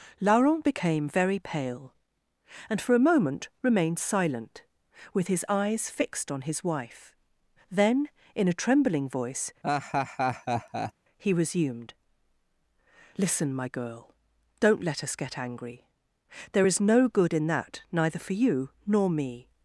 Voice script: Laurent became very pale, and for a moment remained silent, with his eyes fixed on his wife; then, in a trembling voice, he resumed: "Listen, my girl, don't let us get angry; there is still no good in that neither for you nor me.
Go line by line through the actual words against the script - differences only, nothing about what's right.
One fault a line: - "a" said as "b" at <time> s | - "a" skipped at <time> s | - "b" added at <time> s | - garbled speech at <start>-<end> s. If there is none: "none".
- "still" skipped at 16.8 s